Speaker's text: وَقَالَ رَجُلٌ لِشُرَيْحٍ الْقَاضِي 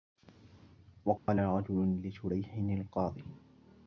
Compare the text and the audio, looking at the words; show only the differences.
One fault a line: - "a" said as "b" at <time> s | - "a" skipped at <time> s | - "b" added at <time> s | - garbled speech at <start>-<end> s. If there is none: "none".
none